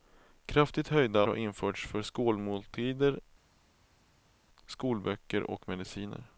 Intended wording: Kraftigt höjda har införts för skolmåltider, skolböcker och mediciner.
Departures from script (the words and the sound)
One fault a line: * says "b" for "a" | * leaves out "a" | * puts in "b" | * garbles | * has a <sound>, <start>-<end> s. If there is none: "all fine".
all fine